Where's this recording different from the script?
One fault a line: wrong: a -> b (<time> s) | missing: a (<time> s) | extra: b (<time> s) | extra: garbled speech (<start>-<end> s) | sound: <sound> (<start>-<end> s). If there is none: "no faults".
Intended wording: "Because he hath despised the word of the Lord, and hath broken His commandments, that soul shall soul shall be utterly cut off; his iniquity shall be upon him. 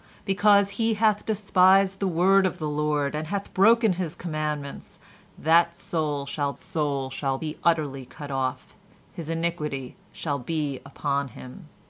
no faults